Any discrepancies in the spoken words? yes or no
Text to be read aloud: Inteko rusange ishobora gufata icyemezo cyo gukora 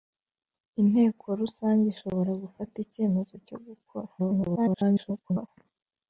yes